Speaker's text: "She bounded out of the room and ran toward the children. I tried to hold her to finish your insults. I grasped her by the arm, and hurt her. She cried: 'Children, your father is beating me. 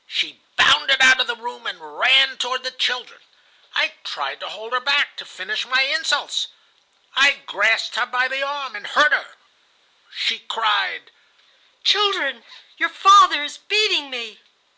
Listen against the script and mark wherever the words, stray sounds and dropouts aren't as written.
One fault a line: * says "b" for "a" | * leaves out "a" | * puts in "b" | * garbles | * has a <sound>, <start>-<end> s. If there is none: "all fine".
* puts in "back"
* says "my" for "your"